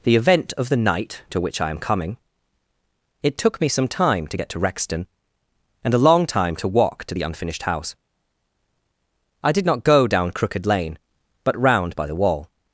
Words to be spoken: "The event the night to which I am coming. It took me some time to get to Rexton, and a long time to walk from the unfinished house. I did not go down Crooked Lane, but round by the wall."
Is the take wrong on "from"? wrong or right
wrong